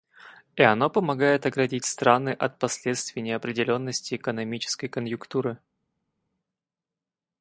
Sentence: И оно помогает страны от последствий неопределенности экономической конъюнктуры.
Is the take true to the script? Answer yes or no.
no